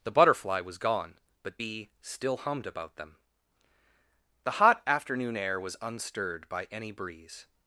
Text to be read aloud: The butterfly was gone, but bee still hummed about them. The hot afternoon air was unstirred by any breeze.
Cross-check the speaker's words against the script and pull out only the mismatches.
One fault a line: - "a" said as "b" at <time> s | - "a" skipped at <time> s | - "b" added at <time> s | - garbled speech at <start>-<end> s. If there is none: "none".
none